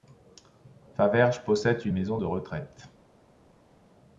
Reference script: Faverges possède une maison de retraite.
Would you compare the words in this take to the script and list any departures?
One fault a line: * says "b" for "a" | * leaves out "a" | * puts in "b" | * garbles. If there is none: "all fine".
all fine